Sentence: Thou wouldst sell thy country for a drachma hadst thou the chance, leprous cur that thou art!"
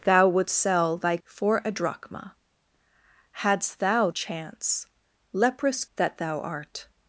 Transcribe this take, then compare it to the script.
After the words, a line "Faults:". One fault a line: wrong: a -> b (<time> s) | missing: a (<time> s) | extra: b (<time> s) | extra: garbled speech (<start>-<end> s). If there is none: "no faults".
Thou wouldst sell thy for a drachma hadst thou chance, leprous that thou art!"
Faults:
missing: country (1.2 s)
missing: the (4.1 s)
missing: cur (5.8 s)